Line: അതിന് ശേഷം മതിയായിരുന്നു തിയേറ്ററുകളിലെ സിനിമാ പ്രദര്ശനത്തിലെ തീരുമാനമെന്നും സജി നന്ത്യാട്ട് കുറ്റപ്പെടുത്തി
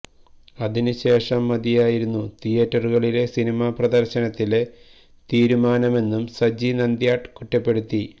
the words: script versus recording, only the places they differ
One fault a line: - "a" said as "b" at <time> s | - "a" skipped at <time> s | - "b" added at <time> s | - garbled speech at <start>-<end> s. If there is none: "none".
none